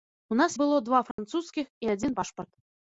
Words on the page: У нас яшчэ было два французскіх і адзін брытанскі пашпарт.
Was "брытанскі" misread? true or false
true